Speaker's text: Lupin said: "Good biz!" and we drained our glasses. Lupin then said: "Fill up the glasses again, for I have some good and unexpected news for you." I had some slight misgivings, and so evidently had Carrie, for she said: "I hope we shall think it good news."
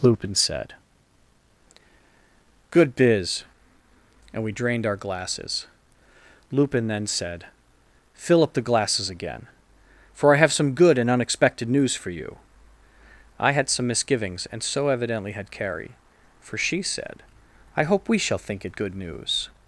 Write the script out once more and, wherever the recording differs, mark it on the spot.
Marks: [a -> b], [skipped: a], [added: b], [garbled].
Lupin said: "Good biz!" and we drained our glasses. Lupin then said: "Fill up the glasses again, for I have some good and unexpected news for you." I had some [skipped: slight] misgivings, and so evidently had Carrie, for she said: "I hope we shall think it good news."